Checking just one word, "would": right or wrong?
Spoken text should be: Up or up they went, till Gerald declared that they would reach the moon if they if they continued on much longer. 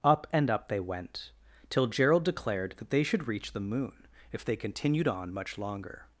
wrong